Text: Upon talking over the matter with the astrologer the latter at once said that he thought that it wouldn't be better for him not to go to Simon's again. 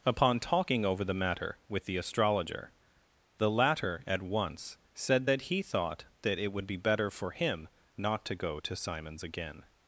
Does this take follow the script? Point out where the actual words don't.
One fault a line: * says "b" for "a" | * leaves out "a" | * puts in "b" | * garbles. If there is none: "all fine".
* says "would" for "wouldn't"